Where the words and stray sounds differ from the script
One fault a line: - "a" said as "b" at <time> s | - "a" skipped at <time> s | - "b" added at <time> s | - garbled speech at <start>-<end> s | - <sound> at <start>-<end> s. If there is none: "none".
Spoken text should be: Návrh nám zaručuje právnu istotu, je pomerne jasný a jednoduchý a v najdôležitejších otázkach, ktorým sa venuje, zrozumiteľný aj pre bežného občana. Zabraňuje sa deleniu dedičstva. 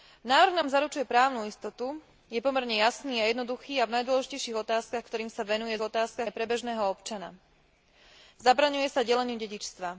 - "zrozumiteľný" said as "otázkach" at 5.8 s